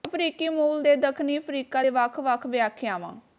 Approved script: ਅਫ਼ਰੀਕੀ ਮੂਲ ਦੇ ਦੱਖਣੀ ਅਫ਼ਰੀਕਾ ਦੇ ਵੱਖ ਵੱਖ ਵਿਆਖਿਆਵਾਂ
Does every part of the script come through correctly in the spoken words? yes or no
yes